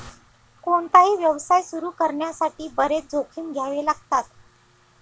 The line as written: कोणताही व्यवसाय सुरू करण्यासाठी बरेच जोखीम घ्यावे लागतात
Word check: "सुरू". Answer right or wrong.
right